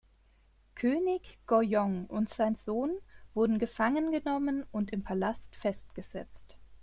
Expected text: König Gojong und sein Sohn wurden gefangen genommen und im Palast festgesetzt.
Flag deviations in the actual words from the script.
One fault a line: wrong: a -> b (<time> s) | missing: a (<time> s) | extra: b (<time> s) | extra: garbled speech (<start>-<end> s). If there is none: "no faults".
no faults